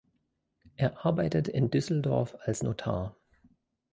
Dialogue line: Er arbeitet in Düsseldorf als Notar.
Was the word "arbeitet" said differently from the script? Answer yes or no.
no